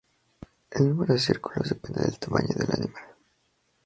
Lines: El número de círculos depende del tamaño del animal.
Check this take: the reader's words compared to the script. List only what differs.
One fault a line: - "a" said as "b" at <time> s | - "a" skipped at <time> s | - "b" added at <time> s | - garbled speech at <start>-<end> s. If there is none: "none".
none